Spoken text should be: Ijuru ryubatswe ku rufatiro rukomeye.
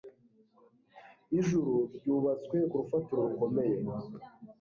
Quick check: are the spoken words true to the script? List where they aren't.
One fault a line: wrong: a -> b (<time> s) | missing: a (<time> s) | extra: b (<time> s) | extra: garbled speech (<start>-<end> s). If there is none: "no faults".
no faults